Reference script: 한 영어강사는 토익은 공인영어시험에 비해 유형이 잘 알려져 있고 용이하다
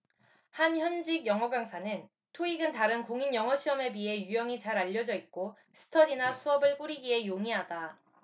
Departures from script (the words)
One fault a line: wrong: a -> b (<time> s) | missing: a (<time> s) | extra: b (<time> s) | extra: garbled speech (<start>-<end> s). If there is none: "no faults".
extra: 현직 (0.8 s)
extra: 다른 (2.7 s)
extra: 스터디나 수업을 꾸리기에 (5.7 s)